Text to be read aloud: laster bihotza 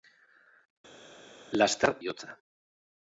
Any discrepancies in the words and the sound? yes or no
no